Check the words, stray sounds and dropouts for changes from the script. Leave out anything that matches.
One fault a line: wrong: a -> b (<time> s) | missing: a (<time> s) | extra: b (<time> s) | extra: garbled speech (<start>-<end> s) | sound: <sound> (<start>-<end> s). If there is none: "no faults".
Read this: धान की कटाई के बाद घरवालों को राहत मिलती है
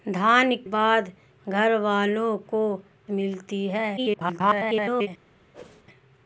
missing: की कटाई के (0.6 s)
missing: राहत (2.6 s)
extra: garbled speech (4.0-5.1 s)
sound: whoosh (5.5-5.8 s)